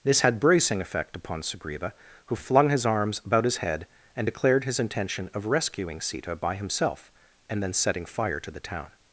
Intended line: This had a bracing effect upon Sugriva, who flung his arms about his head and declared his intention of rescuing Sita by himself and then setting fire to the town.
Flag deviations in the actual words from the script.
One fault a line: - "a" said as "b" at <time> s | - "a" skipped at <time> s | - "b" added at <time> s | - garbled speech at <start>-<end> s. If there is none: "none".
- "a" skipped at 0.4 s